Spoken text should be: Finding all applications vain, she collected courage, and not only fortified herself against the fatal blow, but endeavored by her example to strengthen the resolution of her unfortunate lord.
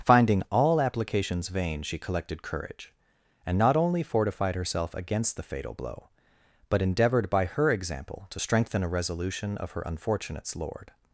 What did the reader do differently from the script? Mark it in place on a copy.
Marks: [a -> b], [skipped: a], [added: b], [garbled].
Finding all applications vain, she collected courage, and not only fortified herself against the fatal blow, but endeavored by her example to strengthen [the -> a] resolution of her [unfortunate -> unfortunates] lord.